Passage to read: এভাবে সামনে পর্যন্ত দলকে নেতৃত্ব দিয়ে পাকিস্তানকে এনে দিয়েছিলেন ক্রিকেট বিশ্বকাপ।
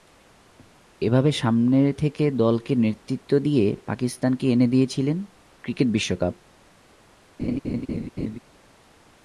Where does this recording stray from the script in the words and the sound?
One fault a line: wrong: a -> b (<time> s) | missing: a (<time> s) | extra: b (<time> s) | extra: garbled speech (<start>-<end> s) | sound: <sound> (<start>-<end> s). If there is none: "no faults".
wrong: পর্যন্ত -> থেকে (1.9 s)
sound: laugh (7.4-8.4 s)